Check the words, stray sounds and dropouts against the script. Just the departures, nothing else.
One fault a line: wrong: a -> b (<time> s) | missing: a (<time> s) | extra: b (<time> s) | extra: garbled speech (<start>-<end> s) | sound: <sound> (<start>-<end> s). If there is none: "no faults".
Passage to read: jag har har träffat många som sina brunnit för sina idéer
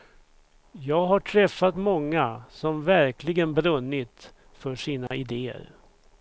missing: har (1.2 s)
wrong: sina -> verkligen (2.8 s)
sound: dropout (5.1-5.1 s)